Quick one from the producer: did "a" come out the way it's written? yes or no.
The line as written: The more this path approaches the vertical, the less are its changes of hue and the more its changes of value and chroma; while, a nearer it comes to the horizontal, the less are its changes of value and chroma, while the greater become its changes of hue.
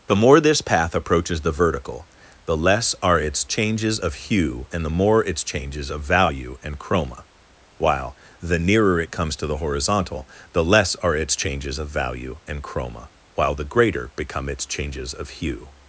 no